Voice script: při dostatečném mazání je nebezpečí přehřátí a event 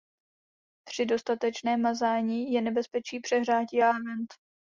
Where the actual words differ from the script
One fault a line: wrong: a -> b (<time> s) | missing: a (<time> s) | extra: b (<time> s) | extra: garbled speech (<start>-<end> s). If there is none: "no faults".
no faults